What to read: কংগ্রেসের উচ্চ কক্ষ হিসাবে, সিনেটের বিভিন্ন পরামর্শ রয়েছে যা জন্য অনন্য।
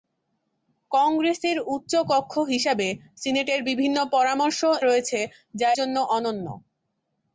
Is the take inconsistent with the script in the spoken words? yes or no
no